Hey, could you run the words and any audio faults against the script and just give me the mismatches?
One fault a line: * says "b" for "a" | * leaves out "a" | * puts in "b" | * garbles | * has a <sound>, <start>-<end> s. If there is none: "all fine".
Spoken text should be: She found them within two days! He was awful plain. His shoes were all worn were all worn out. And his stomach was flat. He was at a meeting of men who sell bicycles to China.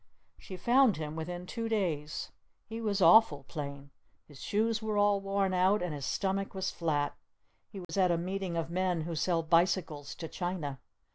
* says "him" for "them"
* leaves out "were all worn"
* has a dropout, 7.8-7.9 s